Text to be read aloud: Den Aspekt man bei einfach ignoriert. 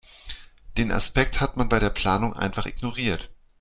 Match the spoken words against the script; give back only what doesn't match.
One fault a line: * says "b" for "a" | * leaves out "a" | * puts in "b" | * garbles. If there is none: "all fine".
* puts in "hat"
* puts in "der Planung"